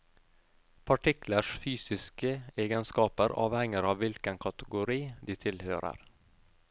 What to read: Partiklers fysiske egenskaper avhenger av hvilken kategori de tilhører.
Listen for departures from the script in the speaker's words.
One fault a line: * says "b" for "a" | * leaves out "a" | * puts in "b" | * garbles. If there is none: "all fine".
all fine